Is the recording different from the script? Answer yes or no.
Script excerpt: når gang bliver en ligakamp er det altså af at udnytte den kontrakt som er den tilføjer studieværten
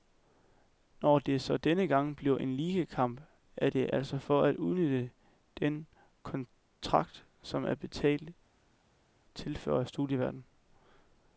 yes